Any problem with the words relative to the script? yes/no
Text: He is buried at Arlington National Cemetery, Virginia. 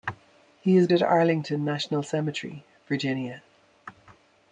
yes